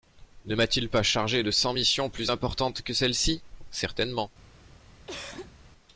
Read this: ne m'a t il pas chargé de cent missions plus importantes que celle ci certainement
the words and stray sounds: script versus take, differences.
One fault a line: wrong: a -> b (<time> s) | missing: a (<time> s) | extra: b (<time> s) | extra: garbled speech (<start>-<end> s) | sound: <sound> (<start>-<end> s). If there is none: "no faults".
sound: cough (5.1-5.6 s)